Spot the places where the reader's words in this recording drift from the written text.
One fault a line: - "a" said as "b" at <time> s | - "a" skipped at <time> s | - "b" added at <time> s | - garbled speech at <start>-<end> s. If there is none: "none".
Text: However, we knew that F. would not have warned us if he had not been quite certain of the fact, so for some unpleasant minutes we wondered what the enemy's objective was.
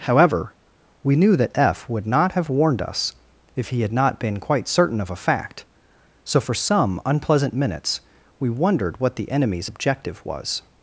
- "the" said as "a" at 5.1 s